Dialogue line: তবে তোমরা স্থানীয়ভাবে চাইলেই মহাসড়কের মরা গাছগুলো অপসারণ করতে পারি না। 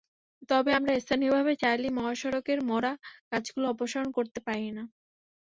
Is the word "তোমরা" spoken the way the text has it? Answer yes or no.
no